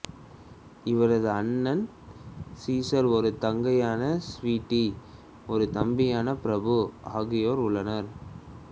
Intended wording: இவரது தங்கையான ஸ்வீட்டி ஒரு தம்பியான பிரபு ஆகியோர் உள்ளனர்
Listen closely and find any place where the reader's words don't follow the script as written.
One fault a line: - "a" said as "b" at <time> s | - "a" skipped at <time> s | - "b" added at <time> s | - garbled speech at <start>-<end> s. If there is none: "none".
- "அண்ணன் சீசர் ஒரு" added at 1.3 s